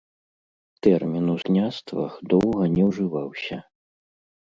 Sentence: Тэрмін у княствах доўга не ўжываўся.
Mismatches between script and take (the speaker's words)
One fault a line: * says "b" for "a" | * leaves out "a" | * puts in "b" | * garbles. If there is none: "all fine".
all fine